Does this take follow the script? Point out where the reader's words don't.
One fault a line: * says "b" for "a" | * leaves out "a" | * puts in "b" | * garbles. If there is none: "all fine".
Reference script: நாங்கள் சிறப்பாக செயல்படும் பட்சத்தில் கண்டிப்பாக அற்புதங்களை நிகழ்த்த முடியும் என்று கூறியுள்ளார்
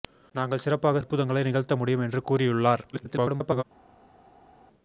* leaves out "செயல்படும் பட்சத்தில் கண்டிப்பாக"
* garbles